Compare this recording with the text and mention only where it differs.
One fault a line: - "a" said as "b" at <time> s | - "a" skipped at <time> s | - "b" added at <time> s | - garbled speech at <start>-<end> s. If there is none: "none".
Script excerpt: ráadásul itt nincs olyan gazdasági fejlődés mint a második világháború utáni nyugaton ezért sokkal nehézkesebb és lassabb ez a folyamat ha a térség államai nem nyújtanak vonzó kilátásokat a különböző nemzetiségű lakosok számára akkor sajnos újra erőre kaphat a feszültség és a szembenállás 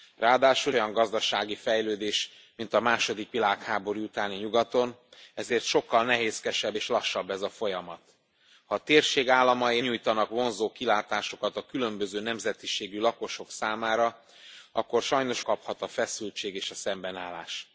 - "itt nincs" skipped at 0.8 s
- "nem" skipped at 9.8 s
- "újra erőre" skipped at 15.4 s